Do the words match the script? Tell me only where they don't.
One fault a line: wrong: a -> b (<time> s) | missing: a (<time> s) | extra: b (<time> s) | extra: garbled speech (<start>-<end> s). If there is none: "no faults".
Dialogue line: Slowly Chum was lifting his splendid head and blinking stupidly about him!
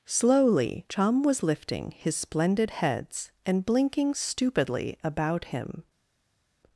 wrong: head -> heads (2.7 s)